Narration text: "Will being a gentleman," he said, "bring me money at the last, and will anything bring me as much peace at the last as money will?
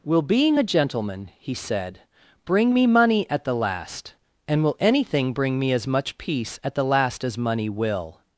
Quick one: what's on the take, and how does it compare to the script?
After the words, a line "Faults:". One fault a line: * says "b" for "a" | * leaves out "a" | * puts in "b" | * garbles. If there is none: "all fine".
"Will being a gentleman," he said, "bring me money at the last, and will anything bring me as much peace at the last as money will?
Faults:
all fine